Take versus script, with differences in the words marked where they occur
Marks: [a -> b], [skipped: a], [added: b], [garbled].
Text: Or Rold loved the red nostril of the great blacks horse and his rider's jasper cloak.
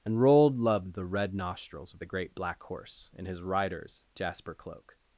[Or -> And] Rold loved the red [nostril -> nostrils] of the great [blacks -> black] horse and his rider's jasper cloak.